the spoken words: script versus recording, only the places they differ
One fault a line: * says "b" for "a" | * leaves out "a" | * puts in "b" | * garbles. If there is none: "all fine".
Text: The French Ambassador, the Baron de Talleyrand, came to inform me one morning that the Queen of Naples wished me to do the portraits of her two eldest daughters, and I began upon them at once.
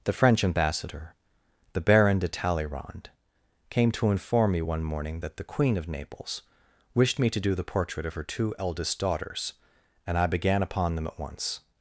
* says "portrait" for "portraits"